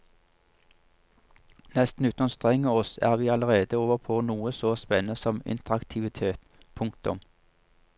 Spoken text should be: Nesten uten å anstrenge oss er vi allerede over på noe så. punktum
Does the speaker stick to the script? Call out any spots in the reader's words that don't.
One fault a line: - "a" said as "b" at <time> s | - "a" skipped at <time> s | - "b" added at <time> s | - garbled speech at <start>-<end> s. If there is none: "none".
- "spennende som interaktivitet" added at 4.8 s